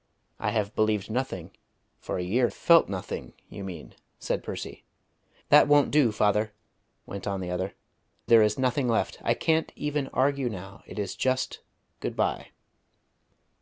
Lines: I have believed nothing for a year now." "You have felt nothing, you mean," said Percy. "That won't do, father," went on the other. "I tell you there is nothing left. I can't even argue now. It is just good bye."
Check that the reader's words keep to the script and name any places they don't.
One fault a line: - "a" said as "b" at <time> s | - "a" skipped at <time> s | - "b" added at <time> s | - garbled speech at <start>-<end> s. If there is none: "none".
- "now You have" skipped at 2.5 s
- "I tell you" skipped at 7.7 s